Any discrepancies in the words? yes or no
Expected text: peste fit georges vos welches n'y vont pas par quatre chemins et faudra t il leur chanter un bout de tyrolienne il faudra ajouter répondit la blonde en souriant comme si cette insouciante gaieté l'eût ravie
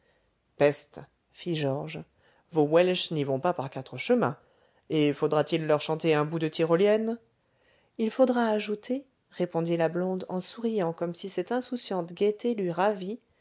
no